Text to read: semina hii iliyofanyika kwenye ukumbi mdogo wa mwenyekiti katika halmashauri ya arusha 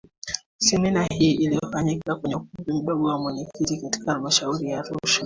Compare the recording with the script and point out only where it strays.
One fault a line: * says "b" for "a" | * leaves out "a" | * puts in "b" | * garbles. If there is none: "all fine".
all fine